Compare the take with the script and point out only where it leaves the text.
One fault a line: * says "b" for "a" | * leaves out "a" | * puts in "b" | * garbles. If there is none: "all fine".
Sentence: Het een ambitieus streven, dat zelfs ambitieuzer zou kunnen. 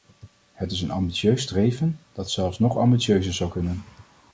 * puts in "is"
* puts in "nog"